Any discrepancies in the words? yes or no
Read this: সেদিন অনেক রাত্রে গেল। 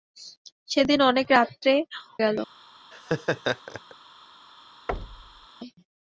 no